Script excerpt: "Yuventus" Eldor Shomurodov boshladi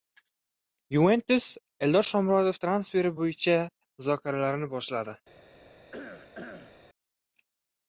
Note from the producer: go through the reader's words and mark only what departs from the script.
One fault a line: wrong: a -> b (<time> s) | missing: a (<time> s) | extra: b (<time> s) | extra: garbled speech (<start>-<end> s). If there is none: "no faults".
extra: transferi bo‘yicha muzokaralarni (2.7 s)